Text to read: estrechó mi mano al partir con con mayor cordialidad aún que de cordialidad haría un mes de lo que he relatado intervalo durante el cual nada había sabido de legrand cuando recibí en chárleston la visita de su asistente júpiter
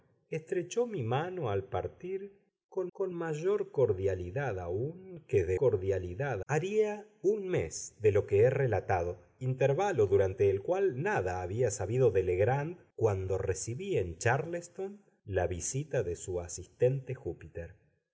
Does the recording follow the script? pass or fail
pass